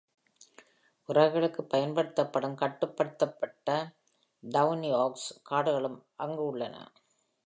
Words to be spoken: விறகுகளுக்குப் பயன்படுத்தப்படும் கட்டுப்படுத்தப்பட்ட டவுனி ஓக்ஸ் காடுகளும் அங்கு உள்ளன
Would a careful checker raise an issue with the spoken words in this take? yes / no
no